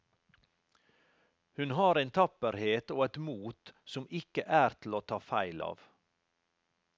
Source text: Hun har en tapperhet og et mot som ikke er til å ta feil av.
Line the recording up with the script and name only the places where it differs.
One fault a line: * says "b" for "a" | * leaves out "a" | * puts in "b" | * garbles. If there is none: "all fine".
all fine